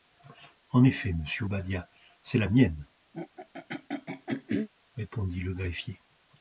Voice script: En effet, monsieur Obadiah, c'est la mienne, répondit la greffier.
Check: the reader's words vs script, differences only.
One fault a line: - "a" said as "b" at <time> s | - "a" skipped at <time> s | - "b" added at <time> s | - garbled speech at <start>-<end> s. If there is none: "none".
- "la" said as "le" at 5.4 s